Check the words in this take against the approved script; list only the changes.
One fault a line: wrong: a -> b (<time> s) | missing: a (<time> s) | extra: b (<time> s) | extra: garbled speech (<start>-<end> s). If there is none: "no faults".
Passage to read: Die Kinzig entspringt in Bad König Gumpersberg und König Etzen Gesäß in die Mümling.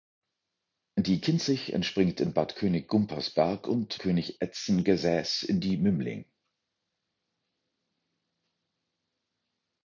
no faults